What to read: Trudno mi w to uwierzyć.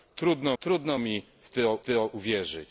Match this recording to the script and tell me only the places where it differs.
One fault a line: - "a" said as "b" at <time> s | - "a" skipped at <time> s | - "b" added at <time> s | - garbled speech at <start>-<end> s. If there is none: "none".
- "trudno" added at 0.6 s
- "to" added at 1.8 s